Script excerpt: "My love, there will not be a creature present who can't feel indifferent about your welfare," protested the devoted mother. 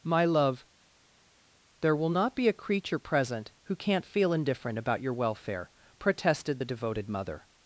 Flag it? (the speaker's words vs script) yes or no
no